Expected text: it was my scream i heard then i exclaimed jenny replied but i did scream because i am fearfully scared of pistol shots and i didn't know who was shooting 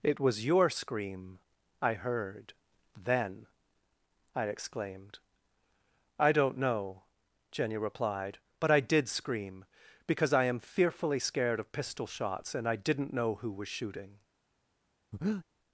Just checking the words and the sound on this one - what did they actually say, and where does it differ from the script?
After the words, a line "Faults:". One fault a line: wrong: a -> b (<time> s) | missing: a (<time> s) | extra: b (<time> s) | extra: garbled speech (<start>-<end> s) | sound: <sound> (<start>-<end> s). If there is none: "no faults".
it was your scream i heard then i exclaimed i don't know jenny replied but i did scream because i am fearfully scared of pistol shots and i didn't know who was shooting
Faults:
wrong: my -> your (0.5 s)
extra: i don't know (6.2 s)
sound: breath (15.1-15.4 s)